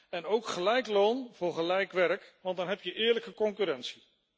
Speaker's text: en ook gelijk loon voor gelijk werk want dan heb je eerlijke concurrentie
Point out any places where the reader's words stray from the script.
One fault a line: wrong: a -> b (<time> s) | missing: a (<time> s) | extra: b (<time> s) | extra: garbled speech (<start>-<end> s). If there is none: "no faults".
no faults